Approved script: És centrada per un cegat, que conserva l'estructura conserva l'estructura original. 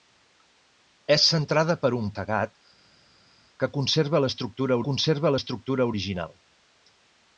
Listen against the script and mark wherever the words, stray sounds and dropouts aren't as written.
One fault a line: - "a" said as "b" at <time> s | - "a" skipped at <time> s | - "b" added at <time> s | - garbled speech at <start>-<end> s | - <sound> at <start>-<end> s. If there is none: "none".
none